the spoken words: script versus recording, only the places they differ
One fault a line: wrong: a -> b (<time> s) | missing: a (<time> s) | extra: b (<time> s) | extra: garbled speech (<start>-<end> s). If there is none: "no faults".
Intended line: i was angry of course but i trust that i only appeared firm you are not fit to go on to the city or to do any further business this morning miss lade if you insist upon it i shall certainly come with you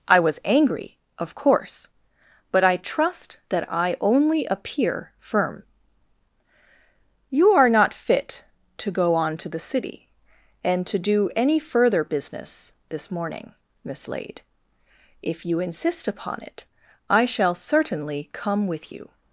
wrong: appeared -> appear (4.5 s)
wrong: or -> and (10.6 s)